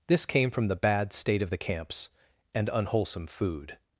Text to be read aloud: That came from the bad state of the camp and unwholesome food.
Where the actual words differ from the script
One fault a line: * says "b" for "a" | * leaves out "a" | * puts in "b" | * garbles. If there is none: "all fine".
* says "This" for "That"
* says "camps" for "camp"